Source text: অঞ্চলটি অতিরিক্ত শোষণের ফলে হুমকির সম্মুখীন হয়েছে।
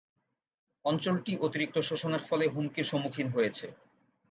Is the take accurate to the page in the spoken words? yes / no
yes